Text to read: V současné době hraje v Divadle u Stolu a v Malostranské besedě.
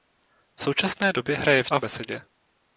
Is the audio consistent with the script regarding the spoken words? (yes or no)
no